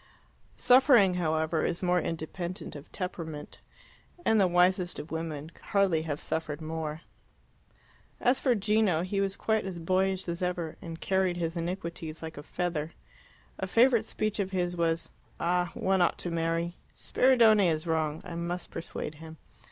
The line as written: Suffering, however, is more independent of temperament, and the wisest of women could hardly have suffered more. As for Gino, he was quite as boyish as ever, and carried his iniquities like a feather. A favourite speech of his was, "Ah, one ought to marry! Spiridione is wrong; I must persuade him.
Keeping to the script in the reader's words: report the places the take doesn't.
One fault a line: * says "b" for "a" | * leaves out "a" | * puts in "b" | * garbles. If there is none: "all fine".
all fine